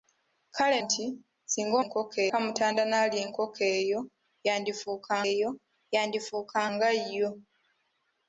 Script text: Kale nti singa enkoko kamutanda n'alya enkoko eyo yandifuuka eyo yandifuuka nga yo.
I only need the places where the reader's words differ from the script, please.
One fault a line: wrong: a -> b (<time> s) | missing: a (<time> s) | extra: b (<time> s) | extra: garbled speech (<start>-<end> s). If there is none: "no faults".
no faults